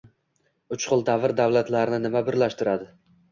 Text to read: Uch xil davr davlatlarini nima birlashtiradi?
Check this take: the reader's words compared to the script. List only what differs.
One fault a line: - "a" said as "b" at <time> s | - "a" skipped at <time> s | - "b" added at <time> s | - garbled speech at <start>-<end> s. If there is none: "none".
none